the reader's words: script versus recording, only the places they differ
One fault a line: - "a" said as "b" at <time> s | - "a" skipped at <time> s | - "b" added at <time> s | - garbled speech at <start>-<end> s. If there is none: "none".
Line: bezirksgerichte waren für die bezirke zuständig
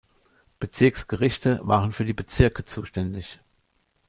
none